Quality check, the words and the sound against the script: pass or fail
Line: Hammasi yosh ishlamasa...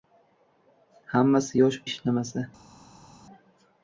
pass